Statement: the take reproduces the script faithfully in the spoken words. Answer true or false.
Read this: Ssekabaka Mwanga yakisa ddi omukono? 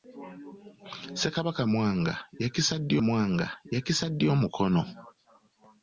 false